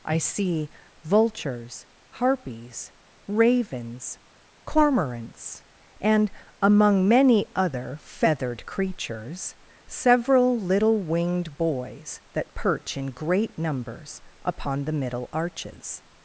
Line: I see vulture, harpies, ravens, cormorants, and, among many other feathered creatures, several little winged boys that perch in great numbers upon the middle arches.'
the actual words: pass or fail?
fail